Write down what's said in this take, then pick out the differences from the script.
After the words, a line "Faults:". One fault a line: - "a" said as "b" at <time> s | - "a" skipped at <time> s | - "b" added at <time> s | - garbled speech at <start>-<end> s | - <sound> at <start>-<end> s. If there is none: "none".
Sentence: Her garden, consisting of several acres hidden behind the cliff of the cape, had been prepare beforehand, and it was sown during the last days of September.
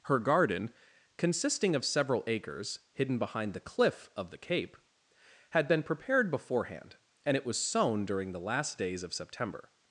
Her garden, consisting of several acres hidden behind the cliff of the cape, had been prepared beforehand, and it was sown during the last days of September.
Faults:
- "prepare" said as "prepared" at 5.8 s